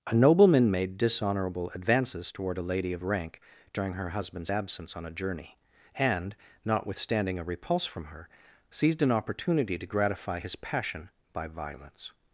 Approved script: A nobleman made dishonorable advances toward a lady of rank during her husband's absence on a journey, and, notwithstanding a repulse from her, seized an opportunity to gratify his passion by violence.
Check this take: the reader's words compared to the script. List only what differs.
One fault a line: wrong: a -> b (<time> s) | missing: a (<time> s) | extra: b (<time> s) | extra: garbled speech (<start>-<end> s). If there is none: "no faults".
no faults